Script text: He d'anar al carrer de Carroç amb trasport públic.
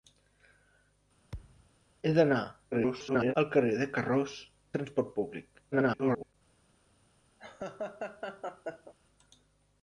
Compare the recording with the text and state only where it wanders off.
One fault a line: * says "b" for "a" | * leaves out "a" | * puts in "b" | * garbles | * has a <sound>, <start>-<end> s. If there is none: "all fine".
* has a thud, 1.3-1.7 s
* garbles
* leaves out "amb"
* garbles
* has a laugh, 7.4-8.9 s